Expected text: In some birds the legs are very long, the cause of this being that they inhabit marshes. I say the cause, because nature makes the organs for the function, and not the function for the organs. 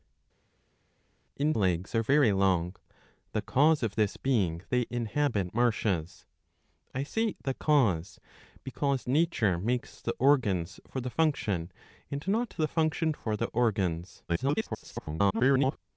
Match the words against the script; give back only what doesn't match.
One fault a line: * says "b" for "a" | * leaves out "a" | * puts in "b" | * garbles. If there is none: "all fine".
* leaves out "some birds the"
* leaves out "that"
* garbles